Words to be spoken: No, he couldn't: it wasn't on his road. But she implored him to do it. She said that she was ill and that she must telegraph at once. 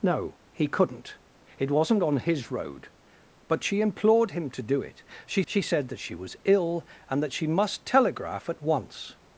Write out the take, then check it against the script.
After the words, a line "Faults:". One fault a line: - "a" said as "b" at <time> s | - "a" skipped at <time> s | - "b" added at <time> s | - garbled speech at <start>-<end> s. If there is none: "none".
No, he couldn't: it wasn't on his road. But she implored him to do it. She she said that she was ill and that she must telegraph at once.
Faults:
- "she" added at 5.5 s